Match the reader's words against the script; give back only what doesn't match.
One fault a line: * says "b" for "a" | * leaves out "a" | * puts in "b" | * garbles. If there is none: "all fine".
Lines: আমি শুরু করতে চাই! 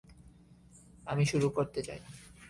all fine